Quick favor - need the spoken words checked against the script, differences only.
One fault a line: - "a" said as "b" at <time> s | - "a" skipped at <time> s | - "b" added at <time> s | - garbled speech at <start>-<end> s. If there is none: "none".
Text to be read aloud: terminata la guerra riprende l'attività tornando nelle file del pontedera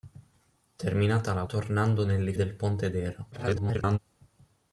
- "guerra riprende l'attività" skipped at 1.4 s
- "file" skipped at 2.3 s
- garbled speech at 3.3-4.0 s